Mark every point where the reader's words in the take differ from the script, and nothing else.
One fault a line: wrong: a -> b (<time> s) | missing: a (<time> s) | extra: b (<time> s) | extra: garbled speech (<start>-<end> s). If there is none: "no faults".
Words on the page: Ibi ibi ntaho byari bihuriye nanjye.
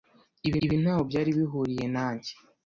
no faults